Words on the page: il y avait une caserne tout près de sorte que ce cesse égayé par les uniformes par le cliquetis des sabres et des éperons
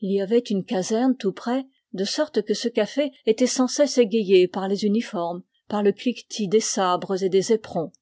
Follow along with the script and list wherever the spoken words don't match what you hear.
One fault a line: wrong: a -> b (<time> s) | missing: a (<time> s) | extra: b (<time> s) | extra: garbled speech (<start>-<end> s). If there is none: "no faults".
extra: café était sans (2.7 s)